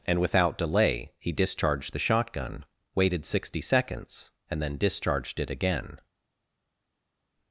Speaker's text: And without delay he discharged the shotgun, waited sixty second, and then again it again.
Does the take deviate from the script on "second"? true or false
true